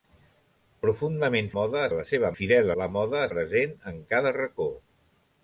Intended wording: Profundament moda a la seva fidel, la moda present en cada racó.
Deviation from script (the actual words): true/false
false